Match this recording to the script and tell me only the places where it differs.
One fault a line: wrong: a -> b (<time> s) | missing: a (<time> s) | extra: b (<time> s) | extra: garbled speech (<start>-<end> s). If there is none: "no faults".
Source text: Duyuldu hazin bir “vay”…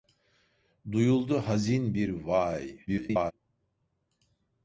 extra: garbled speech (2.9-3.3 s)